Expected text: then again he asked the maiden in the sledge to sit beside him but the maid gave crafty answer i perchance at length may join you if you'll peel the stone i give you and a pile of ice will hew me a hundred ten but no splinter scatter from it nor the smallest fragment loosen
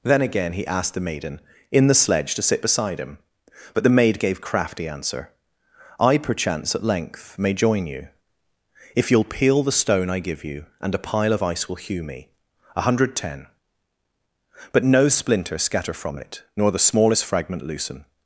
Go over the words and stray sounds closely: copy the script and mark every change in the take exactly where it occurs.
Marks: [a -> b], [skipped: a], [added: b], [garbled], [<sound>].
then again he asked the maiden in the sledge to sit beside him but the maid gave crafty answer i perchance at length may join you if you'll peel the stone i give you and a pile of ice will hew me a hundred ten but no splinter scatter from it nor the smallest fragment loosen